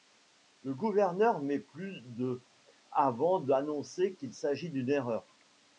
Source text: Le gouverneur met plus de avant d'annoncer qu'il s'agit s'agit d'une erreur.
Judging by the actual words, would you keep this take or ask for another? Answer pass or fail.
fail